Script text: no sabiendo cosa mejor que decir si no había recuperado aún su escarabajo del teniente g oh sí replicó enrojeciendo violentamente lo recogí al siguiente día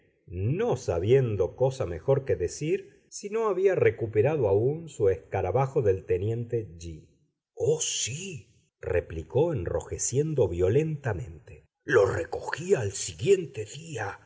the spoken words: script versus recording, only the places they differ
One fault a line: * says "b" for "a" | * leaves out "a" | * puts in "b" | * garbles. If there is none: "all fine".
all fine